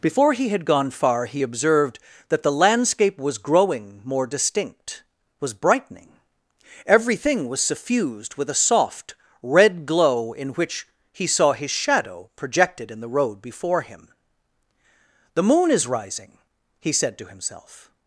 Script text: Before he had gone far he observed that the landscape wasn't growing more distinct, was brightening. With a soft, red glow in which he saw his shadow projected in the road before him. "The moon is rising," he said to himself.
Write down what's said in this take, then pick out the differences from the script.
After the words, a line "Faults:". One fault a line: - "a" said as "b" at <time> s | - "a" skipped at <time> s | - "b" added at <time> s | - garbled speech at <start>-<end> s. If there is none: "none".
Before he had gone far he observed that the landscape was growing more distinct, was brightening. Everything was suffused with a soft, red glow in which he saw his shadow projected in the road before him. "The moon is rising," he said to himself.
Faults:
- "wasn't" said as "was" at 3.2 s
- "Everything was suffused" added at 6.9 s